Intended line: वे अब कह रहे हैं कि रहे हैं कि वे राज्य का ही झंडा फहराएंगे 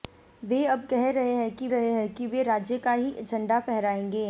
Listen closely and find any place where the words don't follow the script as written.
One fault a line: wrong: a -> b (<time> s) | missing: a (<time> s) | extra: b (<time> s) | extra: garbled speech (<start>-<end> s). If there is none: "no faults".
no faults